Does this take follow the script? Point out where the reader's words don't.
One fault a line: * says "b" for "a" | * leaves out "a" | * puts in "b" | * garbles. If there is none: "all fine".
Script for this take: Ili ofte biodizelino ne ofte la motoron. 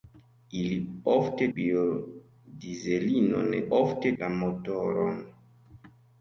all fine